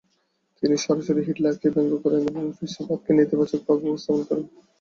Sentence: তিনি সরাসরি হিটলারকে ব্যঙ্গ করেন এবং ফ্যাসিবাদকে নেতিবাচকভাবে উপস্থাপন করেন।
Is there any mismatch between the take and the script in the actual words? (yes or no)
no